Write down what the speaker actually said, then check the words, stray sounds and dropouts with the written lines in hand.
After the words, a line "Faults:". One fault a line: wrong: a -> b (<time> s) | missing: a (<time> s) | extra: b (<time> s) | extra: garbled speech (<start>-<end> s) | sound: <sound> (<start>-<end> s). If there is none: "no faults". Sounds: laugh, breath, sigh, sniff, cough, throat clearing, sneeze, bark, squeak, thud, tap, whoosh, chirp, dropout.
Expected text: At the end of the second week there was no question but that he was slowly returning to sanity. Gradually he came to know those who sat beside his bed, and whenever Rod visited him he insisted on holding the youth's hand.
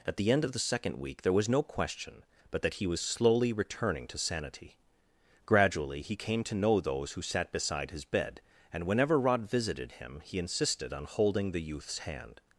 At the end of the second week there was no question but that he was slowly returning to sanity. Gradually he came to know those who sat beside his bed, and whenever Rod visited him he insisted on holding the youth's hand.
Faults:
no faults